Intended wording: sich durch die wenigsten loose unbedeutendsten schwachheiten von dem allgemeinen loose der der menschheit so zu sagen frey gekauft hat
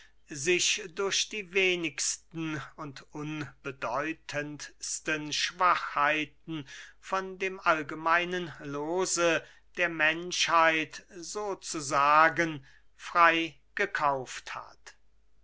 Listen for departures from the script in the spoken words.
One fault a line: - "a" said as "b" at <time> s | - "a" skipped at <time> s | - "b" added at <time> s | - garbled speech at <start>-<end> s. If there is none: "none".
- "loose" said as "und" at 2.8 s
- "der" skipped at 9.9 s